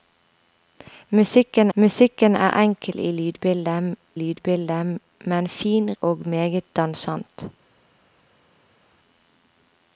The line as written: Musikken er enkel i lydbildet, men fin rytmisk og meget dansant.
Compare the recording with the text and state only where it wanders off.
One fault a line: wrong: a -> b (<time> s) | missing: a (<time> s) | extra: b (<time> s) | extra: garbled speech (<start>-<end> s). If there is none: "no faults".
extra: musikken (1.7 s)
extra: lydbildet (4.1 s)
missing: rytmisk (5.9 s)